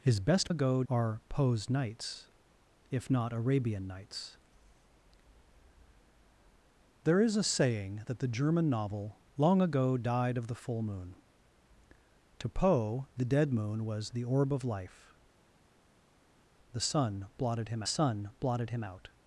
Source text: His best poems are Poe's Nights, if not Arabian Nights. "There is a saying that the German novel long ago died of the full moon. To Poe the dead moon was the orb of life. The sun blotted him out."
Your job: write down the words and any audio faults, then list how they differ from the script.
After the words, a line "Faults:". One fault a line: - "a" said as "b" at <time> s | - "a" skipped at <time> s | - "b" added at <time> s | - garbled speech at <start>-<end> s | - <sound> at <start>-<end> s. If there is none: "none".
His best ago are Poe's Nights, if not Arabian Nights. "There is a saying that the German novel long ago died of the full moon. To Poe the dead moon was the orb of life. The sun blotted him sun blotted him out."
Faults:
- "poems" said as "ago" at 0.5 s
- "sun blotted him" added at 17.8 s